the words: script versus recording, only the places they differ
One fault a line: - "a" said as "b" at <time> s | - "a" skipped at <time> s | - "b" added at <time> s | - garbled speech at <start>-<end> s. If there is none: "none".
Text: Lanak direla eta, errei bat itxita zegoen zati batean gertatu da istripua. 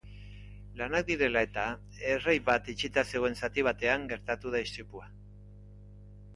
none